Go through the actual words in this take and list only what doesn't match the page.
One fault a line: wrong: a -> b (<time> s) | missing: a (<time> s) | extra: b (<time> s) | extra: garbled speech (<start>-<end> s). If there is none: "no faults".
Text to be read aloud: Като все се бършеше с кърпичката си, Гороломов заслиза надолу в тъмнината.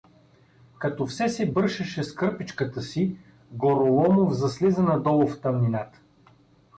no faults